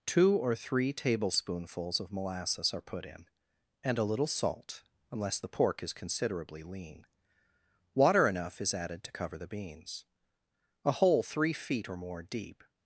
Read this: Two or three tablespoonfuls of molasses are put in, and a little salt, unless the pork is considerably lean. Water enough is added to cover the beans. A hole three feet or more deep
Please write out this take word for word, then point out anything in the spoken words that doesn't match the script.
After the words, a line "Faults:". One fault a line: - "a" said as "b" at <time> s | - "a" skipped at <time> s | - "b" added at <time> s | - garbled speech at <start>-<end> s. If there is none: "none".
Two or three tablespoonfuls of molasses are put in, and a little salt, unless the pork is considerably lean. Water enough is added to cover the beans. A hole three feet or more deep
Faults:
none